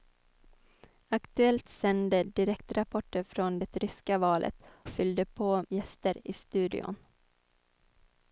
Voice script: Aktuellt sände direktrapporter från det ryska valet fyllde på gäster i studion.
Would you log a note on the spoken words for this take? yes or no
no